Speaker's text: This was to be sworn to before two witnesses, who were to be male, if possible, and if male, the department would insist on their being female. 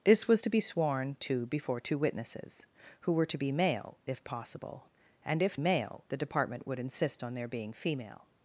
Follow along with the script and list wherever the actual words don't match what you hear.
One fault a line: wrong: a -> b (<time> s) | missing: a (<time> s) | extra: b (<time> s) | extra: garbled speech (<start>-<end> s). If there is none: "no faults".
no faults